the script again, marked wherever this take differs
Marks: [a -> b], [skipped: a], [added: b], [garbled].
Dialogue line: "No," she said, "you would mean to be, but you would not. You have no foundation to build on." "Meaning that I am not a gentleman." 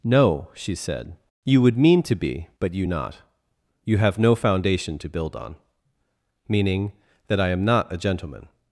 "No," she said, "you would mean to be, but you [skipped: would] not. You have no foundation to build on." "Meaning that I am not a gentleman."